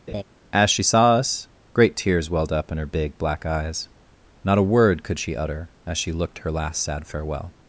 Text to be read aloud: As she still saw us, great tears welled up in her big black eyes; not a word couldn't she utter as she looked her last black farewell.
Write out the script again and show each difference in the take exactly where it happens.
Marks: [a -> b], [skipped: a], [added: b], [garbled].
As she [skipped: still] saw us, great tears welled up in her big black eyes; not a word [couldn't -> could] she utter as she looked her last [black -> sad] farewell.